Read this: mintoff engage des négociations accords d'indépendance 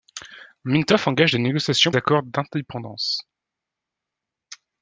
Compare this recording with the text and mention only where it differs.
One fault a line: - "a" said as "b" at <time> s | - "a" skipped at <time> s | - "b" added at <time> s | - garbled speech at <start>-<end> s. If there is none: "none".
none